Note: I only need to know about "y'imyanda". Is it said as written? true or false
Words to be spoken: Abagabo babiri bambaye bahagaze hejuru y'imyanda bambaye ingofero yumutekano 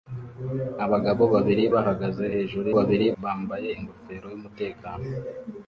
false